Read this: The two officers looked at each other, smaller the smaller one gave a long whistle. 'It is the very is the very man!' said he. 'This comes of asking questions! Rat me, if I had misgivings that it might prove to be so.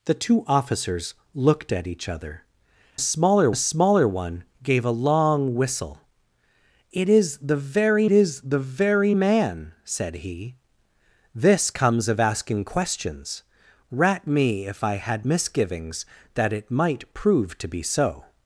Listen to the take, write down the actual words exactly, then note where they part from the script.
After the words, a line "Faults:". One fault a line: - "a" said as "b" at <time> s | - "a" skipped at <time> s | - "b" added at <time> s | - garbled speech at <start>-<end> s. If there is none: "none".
The two officers looked at each other, smaller the smaller one gave a long whistle. 'It is the very is the very man!' said he. 'This comes of asking questions! Rat me, if I had misgivings that it might prove to be so.
Faults:
none